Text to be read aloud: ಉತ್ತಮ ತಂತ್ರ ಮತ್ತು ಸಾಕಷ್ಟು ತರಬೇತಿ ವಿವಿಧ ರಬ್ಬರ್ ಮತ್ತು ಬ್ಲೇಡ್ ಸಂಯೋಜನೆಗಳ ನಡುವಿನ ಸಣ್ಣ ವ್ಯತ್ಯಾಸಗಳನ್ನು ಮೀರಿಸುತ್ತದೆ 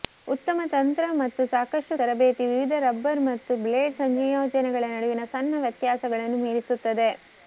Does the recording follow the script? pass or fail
pass